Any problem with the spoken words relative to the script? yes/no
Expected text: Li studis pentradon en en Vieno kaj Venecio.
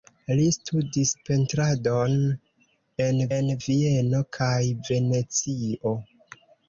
no